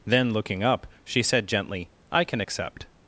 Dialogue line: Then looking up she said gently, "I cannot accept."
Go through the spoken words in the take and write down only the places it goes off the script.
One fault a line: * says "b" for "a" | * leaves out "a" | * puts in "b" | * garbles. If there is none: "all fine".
* says "can" for "cannot"